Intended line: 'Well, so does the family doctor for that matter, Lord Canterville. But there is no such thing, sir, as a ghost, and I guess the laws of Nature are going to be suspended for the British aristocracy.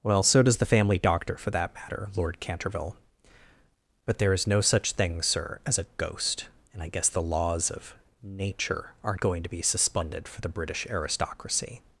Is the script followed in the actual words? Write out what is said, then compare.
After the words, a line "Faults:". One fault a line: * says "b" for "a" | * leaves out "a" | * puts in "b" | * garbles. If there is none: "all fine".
'Well, so does the family doctor for that matter, Lord Canterville. But there is no such thing, sir, as a ghost, and I guess the laws of Nature are going to be suspended for the British aristocracy.
Faults:
all fine